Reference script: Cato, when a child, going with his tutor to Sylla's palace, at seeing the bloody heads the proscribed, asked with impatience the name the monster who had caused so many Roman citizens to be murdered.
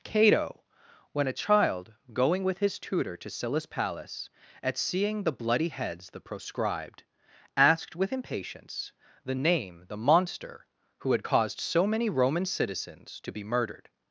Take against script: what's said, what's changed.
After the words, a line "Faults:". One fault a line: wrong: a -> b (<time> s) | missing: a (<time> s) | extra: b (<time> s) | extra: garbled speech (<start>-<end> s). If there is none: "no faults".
Cato, when a child, going with his tutor to Sylla's palace, at seeing the bloody heads the proscribed, asked with impatience the name the monster who had caused so many Roman citizens to be murdered.
Faults:
no faults